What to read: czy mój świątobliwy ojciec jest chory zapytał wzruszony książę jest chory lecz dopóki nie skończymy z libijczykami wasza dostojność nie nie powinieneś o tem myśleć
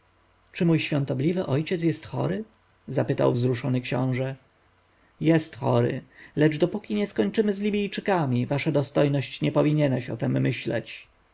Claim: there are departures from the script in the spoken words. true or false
true